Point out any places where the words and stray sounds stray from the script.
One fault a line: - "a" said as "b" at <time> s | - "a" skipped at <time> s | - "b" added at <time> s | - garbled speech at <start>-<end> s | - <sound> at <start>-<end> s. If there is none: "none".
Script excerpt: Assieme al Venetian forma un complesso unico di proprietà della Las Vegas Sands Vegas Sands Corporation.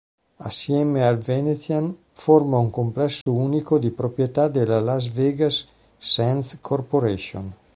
- dropout at 3.2-3.3 s
- "Vegas Sands" skipped at 6.6 s